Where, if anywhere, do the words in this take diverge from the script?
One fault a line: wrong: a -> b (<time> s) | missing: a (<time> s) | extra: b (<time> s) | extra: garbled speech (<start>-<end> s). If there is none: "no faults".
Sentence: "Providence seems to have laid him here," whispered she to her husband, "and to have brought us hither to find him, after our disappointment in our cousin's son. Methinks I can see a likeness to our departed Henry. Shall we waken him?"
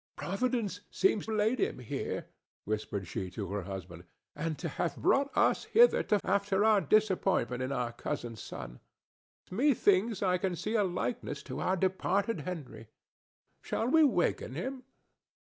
missing: to have (1.3 s)
missing: find him (6.2 s)